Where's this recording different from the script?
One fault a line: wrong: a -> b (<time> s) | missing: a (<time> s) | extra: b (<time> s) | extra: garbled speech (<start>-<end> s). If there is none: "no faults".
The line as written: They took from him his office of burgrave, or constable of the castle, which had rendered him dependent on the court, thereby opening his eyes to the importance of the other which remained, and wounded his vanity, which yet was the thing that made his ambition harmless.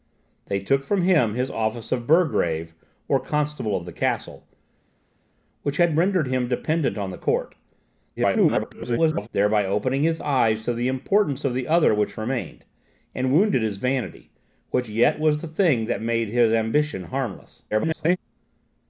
extra: garbled speech (8.2-9.3 s)
extra: garbled speech (17.7-18.2 s)